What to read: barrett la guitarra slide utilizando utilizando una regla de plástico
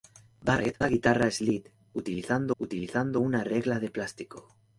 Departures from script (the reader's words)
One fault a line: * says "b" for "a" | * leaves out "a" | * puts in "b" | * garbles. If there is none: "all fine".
all fine